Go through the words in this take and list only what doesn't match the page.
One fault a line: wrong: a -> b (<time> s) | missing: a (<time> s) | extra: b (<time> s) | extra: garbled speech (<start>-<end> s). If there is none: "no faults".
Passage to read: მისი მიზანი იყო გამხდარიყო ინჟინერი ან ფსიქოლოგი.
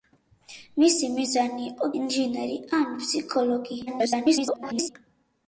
missing: გამხდარიყო (1.9 s)
extra: garbled speech (3.9-4.9 s)